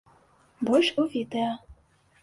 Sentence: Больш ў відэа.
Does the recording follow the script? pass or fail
pass